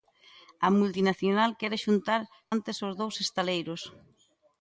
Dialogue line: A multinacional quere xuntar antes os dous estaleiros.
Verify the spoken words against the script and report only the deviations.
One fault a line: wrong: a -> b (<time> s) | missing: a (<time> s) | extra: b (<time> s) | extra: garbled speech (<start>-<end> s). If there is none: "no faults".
no faults